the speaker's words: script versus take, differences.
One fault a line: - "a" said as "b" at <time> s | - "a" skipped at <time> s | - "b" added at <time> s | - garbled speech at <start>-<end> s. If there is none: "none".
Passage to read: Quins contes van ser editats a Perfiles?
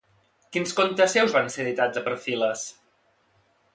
- "seus" added at 1.2 s